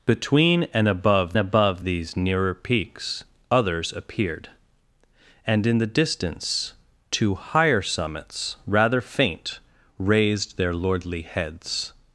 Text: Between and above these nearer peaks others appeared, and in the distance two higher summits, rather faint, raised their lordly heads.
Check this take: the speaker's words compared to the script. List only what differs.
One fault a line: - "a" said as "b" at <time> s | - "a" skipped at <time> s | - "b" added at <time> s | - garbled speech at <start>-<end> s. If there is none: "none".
- "above" added at 1.4 s